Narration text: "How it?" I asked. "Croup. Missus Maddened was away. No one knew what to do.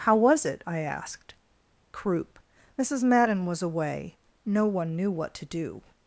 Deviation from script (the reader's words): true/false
true